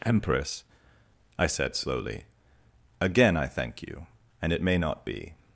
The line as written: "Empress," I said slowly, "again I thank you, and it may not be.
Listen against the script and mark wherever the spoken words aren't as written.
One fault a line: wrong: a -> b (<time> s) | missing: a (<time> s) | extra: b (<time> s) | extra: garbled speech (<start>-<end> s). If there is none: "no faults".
no faults